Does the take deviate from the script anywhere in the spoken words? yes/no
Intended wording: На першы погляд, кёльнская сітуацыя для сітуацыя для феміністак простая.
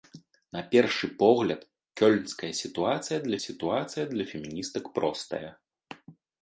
no